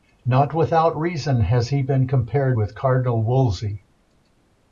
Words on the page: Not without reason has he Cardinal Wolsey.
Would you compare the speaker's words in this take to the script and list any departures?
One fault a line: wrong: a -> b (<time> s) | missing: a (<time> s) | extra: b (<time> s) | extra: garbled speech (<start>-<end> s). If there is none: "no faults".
extra: been compared with (1.8 s)